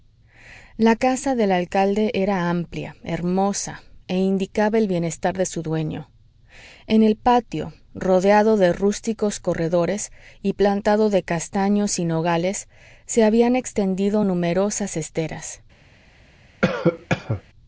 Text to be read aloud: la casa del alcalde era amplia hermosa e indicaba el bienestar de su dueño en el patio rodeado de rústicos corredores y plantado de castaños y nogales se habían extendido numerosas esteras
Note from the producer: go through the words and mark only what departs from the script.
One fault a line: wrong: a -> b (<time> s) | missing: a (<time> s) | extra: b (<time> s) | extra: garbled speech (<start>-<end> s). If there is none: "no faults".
no faults